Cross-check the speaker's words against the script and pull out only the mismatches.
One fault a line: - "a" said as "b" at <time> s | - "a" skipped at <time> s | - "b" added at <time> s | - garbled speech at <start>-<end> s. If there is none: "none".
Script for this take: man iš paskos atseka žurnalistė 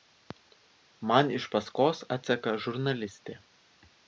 none